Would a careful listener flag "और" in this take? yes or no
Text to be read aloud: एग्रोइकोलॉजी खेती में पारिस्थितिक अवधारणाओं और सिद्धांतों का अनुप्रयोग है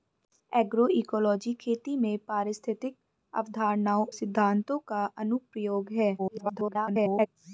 yes